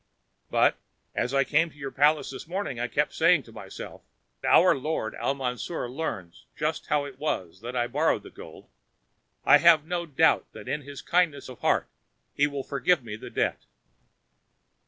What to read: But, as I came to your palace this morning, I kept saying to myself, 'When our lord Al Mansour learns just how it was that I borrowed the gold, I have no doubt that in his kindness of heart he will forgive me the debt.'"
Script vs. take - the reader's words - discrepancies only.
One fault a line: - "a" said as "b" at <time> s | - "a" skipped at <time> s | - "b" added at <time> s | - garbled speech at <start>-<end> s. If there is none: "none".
- "When" skipped at 4.0 s